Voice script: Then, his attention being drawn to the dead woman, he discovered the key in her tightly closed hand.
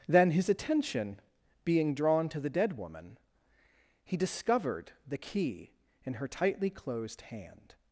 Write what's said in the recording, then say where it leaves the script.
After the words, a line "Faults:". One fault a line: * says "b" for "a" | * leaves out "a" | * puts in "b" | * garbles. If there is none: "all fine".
Then, his attention being drawn to the dead woman, he discovered the key in her tightly closed hand.
Faults:
all fine